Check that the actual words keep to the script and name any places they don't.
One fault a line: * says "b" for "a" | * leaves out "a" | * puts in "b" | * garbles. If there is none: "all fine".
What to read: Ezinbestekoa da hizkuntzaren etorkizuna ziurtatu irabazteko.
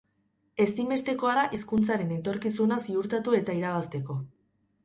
* puts in "eta"